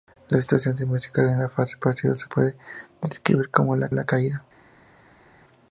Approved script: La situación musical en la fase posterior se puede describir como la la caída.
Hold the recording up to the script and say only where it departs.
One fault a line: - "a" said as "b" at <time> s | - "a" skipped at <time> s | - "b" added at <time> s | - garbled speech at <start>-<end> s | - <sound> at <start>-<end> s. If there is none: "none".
none